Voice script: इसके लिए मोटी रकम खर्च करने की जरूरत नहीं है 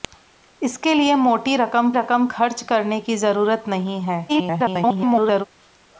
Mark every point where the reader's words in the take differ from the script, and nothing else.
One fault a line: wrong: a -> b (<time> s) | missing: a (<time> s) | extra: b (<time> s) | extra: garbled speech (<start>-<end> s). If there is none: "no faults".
extra: रकम (1.9 s)
extra: garbled speech (4.3-5.4 s)